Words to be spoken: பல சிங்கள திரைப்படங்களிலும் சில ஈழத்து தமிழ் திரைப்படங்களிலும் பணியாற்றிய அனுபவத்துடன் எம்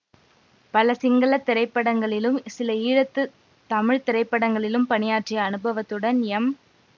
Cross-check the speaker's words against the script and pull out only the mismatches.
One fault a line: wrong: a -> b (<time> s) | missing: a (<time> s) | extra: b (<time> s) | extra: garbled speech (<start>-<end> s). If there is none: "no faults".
no faults